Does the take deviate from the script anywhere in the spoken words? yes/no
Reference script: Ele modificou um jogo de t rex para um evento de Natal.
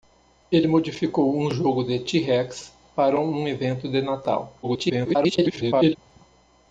yes